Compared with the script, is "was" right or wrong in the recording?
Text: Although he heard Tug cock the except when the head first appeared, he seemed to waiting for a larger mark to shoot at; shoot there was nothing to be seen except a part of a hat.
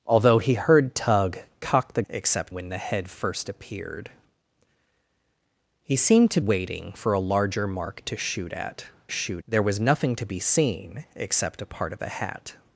right